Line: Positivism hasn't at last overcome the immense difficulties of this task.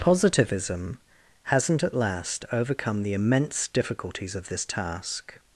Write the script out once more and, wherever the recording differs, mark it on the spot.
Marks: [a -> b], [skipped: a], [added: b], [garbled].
Positivism hasn't at last overcome the immense difficulties of this task.